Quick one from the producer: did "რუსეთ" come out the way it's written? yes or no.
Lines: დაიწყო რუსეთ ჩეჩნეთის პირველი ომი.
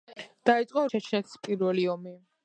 no